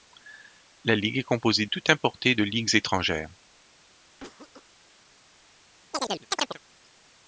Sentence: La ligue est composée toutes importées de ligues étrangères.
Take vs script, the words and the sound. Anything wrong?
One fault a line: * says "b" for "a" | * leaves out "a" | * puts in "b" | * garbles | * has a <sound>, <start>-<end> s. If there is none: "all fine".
* has a cough, 4.2-4.7 s
* has a chirp, 5.9-6.6 s